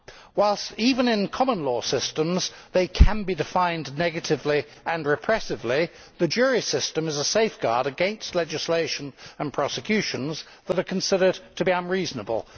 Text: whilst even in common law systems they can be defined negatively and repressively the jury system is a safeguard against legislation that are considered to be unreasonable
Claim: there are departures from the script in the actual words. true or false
true